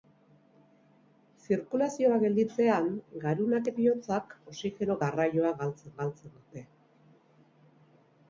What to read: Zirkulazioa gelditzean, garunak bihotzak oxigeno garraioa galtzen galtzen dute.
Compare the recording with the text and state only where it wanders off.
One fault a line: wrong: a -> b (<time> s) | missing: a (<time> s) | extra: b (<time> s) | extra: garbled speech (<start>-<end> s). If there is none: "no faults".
no faults